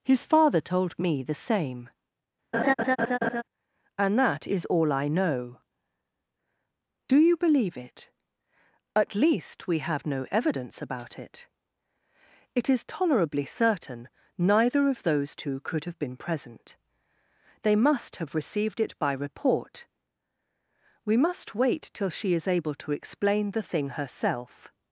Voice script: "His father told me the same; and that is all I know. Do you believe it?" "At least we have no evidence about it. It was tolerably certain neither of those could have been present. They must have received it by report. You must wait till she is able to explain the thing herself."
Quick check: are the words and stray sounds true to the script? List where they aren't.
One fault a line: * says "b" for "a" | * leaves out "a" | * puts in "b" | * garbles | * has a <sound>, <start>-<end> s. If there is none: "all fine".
* has a laugh, 2.5-3.4 s
* says "is" for "was"
* puts in "two"
* says "We" for "You"